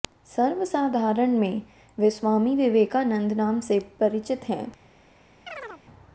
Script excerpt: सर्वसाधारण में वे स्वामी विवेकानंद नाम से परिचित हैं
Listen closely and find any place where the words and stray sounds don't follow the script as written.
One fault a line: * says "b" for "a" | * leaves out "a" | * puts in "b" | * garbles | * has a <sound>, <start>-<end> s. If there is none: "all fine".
* has a chirp, 5.5-5.8 s